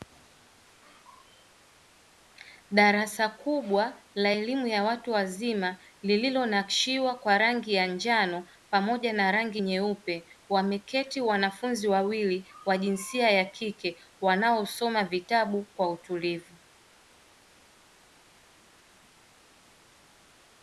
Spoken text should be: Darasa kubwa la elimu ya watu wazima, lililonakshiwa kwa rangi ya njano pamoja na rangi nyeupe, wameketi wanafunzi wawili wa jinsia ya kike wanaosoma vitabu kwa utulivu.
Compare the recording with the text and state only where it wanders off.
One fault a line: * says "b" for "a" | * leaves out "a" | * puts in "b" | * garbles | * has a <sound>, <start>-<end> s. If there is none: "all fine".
all fine